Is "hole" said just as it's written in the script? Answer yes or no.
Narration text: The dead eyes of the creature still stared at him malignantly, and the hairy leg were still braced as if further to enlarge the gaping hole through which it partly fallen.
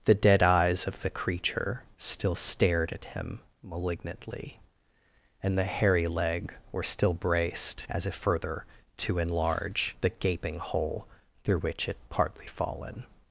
yes